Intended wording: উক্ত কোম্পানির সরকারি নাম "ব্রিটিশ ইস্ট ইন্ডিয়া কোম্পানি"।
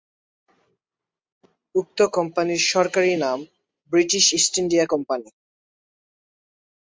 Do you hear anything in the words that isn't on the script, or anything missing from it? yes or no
no